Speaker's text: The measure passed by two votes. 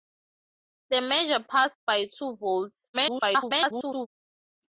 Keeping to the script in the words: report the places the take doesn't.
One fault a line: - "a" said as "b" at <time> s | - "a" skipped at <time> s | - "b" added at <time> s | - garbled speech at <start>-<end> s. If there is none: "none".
- garbled speech at 2.9-4.1 s